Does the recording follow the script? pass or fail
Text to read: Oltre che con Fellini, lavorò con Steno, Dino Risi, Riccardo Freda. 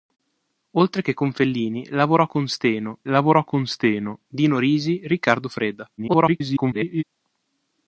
fail